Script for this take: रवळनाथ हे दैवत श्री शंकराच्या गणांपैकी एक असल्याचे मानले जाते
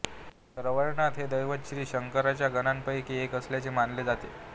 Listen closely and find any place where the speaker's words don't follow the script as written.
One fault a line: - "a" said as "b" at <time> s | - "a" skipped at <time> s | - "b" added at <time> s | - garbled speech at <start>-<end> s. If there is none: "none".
none